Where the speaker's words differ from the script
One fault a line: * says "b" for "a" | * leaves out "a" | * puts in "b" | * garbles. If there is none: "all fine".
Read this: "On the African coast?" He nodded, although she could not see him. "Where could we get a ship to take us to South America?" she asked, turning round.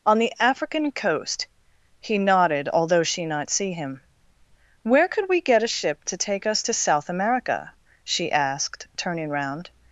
* leaves out "could"